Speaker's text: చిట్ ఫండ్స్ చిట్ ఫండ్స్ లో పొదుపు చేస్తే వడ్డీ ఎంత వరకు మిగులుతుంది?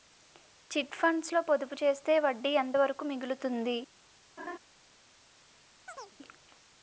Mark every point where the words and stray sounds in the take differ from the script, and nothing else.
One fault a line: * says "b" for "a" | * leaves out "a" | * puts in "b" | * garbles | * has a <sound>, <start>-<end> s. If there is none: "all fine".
* leaves out "చిట్ ఫండ్స్"
* has a laugh, 4.4-4.6 s
* has a chirp, 5.9-6.2 s